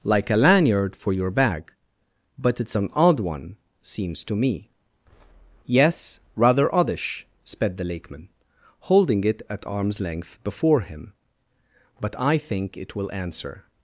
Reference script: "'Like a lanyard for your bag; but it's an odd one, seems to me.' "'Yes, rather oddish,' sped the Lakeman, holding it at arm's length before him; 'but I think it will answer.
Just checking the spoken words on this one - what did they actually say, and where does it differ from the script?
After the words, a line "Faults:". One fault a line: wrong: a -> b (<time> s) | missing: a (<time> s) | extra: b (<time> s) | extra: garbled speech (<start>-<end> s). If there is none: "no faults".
"'Like a lanyard for your bag; but it's an odd one, seems to me.' "'Yes, rather oddish,' sped the Lakeman, holding it at arm's length before him; 'but I think it will answer.
Faults:
no faults